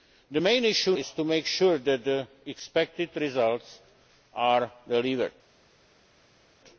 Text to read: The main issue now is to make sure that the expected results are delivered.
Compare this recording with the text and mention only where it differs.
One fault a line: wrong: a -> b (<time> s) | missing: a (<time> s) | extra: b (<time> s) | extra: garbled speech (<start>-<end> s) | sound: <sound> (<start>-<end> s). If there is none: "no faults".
missing: now (0.9 s)